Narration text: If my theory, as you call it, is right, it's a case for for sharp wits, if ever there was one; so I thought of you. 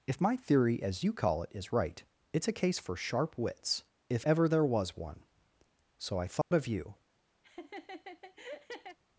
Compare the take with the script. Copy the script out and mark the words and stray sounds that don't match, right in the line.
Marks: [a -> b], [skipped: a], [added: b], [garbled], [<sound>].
If my theory, as you call it, is right, it's a case for [skipped: for] sharp wits, if ever there was one; so I thought [dropout] of you. [laugh]